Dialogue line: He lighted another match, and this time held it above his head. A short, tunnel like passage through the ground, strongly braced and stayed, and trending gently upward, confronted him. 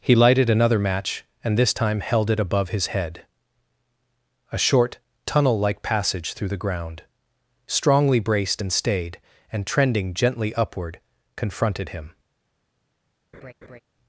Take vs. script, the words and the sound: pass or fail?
fail